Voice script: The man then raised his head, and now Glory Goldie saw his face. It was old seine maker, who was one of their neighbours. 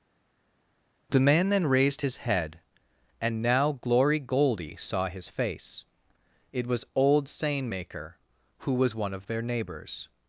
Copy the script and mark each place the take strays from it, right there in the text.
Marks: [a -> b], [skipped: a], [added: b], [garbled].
The man then raised his head, and now Glory Goldie saw his face. It was old seine maker, who was one of their neighbours.